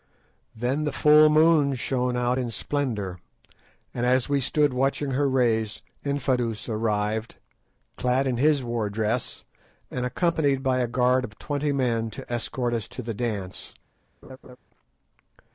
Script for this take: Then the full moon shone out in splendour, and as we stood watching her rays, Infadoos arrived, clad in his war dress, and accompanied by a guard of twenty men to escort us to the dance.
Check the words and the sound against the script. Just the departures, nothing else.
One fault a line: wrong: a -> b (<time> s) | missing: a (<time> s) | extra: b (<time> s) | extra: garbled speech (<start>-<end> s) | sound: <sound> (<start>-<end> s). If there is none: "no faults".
sound: laugh (14.2-14.6 s)